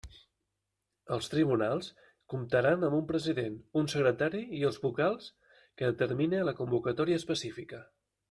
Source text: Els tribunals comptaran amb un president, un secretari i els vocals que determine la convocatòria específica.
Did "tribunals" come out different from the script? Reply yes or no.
no